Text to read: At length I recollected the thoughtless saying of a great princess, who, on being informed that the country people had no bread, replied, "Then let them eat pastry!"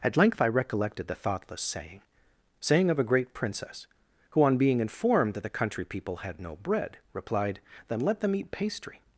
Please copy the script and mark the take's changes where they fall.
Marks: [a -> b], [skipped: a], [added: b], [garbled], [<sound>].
At length I recollected the thoughtless saying [added: saying] of a great princess, who, on being informed that the country people had no bread, replied, "Then let them eat pastry!"